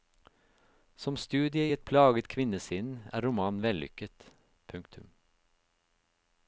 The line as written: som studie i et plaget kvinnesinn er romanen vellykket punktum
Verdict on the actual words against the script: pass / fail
pass